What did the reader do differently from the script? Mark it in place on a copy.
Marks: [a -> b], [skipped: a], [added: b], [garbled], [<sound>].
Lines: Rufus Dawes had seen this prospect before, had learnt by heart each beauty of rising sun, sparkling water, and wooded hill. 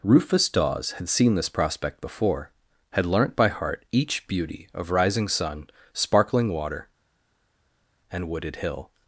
Rufus Dawes had seen this prospect before, had learnt by heart each beauty of rising sun, sparkling water, and wooded hill.